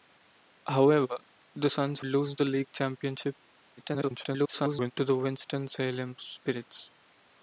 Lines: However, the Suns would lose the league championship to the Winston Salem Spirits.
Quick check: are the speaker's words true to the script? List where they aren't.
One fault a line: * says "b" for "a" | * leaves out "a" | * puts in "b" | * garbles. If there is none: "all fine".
* leaves out "would"
* garbles